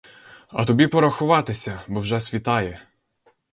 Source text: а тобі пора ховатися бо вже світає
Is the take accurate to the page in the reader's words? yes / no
yes